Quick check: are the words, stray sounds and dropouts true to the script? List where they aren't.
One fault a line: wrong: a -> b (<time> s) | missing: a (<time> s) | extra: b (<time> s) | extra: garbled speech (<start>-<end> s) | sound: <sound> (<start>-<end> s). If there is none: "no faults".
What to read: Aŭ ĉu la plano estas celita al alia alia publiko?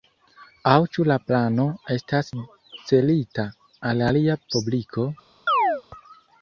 missing: alia (4.4 s)
sound: chirp (5.5-5.8 s)